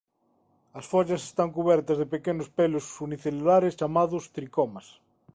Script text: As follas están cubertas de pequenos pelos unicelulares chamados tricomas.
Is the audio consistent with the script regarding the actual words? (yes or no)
yes